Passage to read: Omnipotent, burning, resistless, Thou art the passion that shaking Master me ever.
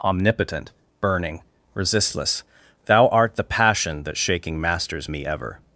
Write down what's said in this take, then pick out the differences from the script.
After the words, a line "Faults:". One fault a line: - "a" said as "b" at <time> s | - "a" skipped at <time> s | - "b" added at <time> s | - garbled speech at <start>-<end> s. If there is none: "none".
Omnipotent, burning, resistless, Thou art the passion that shaking Masters me ever.
Faults:
- "Master" said as "Masters" at 4.6 s